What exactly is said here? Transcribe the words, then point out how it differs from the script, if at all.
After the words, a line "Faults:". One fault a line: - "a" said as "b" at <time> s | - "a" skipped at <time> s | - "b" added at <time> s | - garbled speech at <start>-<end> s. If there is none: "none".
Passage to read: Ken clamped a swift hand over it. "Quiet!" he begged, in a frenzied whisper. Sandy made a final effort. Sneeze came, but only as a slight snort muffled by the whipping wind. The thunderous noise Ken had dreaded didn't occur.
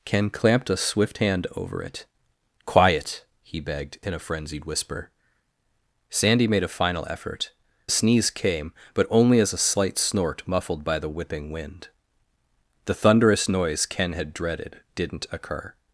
Ken clamped a swift hand over it. "Quiet!" he begged, in a frenzied whisper. Sandy made a final effort. Sneeze came, but only as a slight snort muffled by the whipping wind. The thunderous noise Ken had dreaded didn't occur.
Faults:
none